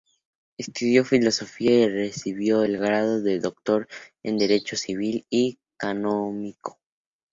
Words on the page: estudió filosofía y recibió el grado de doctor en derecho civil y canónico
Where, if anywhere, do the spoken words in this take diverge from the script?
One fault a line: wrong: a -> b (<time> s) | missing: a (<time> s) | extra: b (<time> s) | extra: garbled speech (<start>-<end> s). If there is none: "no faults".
no faults